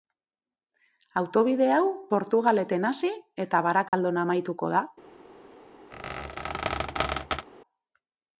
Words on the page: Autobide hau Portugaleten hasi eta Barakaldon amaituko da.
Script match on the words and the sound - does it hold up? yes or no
no